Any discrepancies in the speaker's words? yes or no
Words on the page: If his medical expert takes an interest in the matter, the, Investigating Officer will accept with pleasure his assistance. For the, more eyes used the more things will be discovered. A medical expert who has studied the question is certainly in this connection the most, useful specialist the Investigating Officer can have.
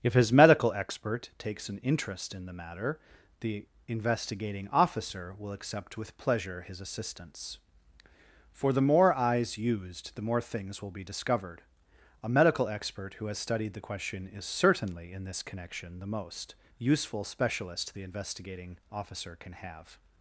no